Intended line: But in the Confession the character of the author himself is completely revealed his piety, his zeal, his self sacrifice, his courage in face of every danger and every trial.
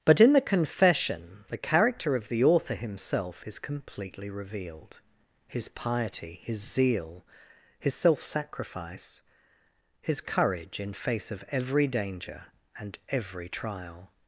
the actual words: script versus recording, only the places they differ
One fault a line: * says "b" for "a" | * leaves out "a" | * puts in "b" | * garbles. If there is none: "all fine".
all fine